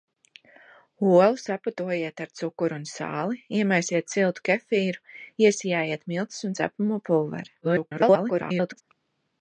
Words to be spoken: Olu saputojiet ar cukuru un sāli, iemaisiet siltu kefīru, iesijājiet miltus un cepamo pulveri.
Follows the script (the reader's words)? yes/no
no